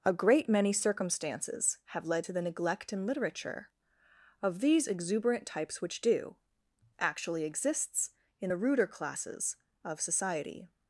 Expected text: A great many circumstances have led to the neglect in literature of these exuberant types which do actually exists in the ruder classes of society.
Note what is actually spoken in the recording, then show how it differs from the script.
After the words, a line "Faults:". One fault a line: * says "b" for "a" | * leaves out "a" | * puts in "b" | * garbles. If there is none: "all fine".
A great many circumstances have led to the neglect in literature of these exuberant types which do actually exists in the ruder classes of society.
Faults:
all fine